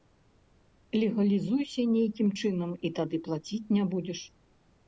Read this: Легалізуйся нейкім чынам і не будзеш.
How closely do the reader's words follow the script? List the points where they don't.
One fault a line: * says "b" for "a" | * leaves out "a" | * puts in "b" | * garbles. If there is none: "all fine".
* puts in "тады плаціць"